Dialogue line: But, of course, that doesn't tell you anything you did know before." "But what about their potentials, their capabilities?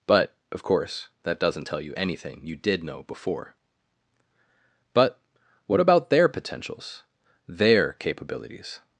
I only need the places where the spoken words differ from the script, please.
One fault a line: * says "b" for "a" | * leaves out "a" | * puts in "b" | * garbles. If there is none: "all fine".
all fine